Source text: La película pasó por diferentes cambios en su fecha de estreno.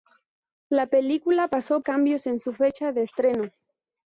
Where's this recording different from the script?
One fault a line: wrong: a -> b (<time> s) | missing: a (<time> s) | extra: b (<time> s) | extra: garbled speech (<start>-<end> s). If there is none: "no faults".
missing: por diferentes (1.8 s)